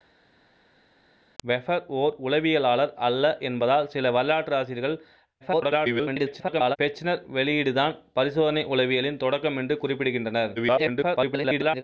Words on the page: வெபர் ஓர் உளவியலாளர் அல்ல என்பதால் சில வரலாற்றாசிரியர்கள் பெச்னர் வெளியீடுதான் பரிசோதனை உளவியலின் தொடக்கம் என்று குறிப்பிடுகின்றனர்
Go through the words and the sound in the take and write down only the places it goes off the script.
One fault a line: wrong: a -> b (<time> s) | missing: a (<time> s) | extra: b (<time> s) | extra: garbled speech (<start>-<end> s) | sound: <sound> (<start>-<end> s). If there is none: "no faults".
extra: garbled speech (5.4-6.8 s)
extra: garbled speech (10.6-11.8 s)